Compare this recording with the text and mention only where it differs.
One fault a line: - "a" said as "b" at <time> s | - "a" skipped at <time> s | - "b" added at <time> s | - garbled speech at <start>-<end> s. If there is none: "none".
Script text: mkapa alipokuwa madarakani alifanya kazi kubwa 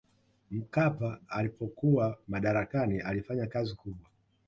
none